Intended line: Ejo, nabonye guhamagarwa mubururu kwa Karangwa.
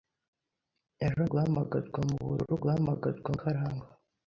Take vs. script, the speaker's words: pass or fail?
fail